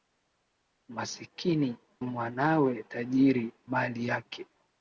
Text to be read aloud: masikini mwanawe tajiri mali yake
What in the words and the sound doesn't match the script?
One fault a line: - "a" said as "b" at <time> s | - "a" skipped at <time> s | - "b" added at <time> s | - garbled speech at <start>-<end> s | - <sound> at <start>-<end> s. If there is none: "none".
none